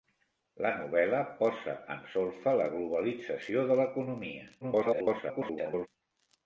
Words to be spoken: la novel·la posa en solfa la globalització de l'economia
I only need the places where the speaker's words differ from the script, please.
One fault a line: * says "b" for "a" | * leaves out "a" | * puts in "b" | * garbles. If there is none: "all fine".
* garbles